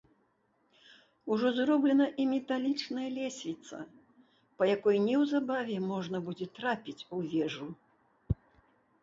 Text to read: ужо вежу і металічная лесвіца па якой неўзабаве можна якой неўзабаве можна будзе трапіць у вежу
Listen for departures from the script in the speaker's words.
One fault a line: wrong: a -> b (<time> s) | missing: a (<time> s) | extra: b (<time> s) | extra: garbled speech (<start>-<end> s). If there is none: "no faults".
wrong: вежу -> зроблена (1.6 s)
missing: якой неўзабаве можна (6.2 s)